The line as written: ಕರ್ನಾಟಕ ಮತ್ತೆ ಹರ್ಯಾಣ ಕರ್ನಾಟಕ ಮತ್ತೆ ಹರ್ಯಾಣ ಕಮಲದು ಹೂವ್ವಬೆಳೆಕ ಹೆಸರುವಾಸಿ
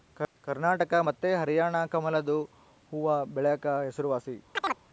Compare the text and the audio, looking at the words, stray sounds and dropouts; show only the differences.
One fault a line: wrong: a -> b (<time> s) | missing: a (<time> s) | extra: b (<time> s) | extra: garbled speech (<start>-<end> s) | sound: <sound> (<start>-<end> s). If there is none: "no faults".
missing: ಕರ್ನಾಟಕ ಮತ್ತೆ ಹರ್ಯಾಣ (1.8 s)
sound: chirp (4.6-4.8 s)